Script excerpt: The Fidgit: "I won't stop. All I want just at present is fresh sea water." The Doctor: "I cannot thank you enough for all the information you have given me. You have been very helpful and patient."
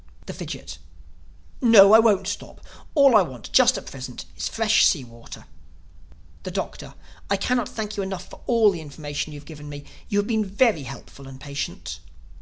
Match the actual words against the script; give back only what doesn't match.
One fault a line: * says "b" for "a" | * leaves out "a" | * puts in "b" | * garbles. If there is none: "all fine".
* puts in "No"